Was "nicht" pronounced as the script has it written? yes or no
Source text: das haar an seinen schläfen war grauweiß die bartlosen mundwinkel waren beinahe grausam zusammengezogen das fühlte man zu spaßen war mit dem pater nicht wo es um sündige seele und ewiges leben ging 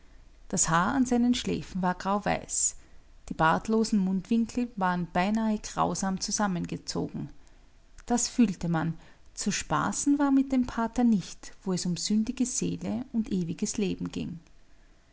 yes